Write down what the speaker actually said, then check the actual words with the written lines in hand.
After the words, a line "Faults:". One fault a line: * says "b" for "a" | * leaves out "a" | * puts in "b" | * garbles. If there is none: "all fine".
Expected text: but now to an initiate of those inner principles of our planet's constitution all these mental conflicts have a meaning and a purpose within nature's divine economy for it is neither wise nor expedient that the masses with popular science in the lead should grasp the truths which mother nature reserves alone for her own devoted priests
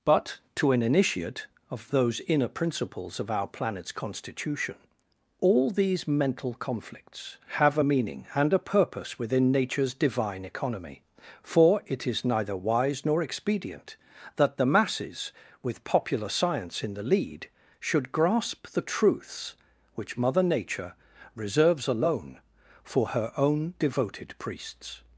but to an initiate of those inner principles of our planet's constitution all these mental conflicts have a meaning and a purpose within nature's divine economy for it is neither wise nor expedient that the masses with popular science in the lead should grasp the truths which mother nature reserves alone for her own devoted priests
Faults:
* leaves out "now"